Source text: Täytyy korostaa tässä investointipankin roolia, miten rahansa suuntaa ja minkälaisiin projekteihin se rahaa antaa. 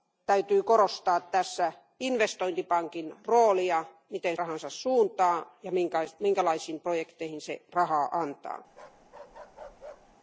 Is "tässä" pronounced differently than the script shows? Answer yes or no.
no